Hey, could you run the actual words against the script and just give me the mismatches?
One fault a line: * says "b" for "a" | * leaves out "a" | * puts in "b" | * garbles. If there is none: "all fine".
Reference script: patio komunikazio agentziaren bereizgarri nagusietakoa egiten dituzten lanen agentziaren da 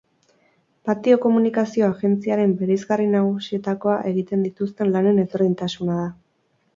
* says "ezberdintasuna" for "agentziaren"